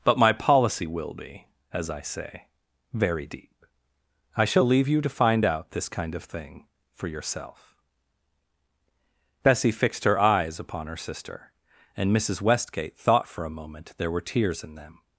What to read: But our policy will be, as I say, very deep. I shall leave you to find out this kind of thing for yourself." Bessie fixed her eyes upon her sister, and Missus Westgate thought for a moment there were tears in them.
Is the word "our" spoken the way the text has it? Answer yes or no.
no